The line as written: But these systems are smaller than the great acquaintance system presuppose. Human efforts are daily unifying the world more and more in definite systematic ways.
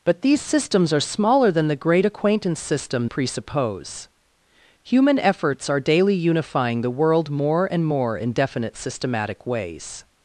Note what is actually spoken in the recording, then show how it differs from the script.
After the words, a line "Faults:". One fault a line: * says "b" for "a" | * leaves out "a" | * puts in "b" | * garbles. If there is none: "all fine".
But these systems are smaller than the great acquaintance system presuppose. Human efforts are daily unifying the world more and more in definite systematic ways.
Faults:
all fine